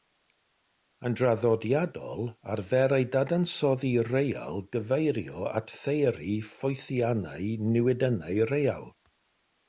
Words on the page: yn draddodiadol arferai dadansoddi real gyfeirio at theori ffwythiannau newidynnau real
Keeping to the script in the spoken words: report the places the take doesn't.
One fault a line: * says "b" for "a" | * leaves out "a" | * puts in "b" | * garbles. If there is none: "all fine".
all fine